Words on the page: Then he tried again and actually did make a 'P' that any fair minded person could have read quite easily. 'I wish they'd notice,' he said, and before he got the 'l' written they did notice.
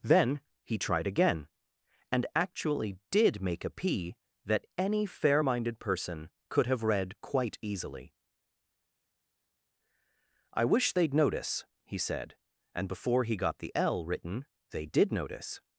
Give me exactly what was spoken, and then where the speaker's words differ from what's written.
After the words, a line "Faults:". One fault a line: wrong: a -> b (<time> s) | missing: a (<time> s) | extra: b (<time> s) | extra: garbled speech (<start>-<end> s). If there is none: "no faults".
Then he tried again and actually did make a 'P' that any fair minded person could have read quite easily. 'I wish they'd notice,' he said, and before he got the 'l' written they did notice.
Faults:
no faults